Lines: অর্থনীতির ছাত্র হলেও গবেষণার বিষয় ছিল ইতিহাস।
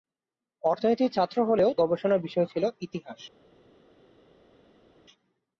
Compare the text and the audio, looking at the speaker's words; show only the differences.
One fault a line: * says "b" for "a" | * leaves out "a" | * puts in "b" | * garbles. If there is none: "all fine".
all fine